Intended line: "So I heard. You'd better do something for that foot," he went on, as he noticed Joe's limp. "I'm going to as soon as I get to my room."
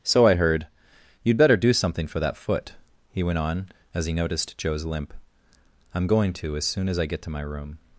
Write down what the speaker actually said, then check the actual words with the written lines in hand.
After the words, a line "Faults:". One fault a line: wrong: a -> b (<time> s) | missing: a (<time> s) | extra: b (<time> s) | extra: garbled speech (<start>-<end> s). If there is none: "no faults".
"So I heard. You'd better do something for that foot," he went on, as he noticed Joe's limp. "I'm going to as soon as I get to my room."
Faults:
no faults